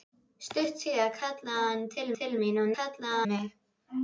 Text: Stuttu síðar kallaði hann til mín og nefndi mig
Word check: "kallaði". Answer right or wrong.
right